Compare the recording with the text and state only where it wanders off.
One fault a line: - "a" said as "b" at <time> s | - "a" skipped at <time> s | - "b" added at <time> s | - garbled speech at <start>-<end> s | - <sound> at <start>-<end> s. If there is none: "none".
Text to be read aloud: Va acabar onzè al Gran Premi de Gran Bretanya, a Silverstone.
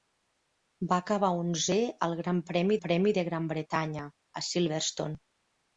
- "Premi" added at 2.8 s